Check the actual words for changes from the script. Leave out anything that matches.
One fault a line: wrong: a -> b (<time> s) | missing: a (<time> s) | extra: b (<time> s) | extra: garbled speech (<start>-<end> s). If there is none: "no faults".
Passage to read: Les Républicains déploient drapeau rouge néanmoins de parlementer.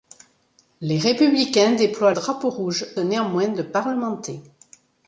no faults